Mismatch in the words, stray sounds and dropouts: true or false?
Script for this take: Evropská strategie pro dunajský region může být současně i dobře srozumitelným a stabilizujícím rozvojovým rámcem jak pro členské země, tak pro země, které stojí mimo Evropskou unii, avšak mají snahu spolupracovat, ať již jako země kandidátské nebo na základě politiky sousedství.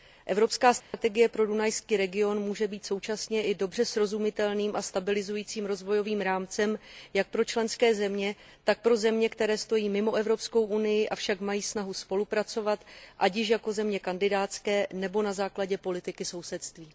true